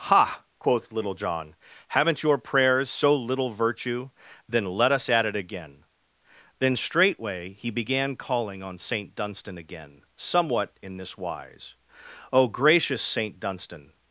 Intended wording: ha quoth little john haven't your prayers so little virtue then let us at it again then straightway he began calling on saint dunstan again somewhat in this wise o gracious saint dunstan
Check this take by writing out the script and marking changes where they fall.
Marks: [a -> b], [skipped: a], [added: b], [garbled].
ha quoth little john haven't your prayers so little virtue then let us at it again then straightway he began calling on saint dunstan again somewhat in this wise o gracious saint dunstan